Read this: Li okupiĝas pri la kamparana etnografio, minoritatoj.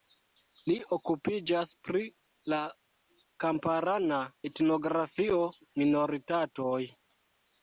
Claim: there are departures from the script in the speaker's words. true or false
false